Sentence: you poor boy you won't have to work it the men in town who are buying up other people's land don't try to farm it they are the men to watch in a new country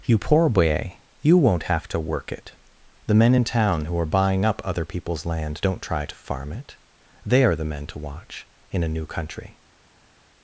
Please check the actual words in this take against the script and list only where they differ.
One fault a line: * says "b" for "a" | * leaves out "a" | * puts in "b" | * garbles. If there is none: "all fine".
all fine